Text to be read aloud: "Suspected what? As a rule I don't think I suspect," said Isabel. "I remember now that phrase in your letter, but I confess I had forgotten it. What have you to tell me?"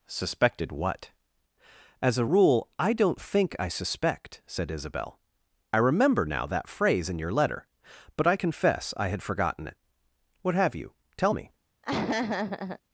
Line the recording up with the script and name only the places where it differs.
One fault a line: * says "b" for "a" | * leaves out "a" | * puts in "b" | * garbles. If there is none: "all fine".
* leaves out "to"